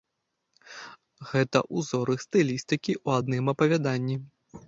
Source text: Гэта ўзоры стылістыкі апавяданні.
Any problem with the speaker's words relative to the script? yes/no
yes